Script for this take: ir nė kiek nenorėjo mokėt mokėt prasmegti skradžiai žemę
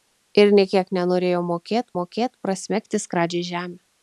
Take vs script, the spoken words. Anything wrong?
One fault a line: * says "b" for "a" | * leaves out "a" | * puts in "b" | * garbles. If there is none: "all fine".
all fine